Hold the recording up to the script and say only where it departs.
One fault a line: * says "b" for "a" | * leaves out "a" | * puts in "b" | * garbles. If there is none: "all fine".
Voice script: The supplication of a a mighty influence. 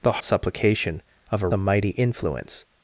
all fine